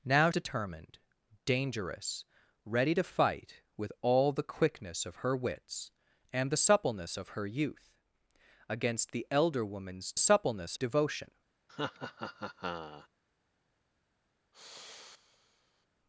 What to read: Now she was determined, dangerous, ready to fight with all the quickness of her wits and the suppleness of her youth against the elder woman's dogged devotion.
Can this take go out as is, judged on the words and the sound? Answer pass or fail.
fail